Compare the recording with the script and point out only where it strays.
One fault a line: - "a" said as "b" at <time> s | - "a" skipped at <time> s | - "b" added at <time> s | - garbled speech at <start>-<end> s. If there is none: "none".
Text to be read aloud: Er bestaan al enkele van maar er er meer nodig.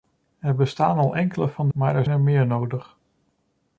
none